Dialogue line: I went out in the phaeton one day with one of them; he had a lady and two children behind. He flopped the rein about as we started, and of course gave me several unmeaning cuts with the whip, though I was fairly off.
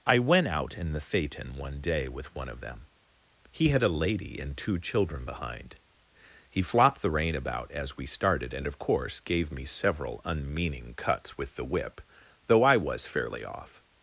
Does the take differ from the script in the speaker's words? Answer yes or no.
no